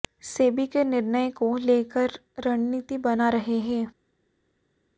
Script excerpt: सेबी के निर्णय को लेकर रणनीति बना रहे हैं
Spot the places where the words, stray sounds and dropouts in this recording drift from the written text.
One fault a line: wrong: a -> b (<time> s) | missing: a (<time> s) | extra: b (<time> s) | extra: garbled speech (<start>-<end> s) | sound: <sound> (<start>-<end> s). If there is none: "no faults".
no faults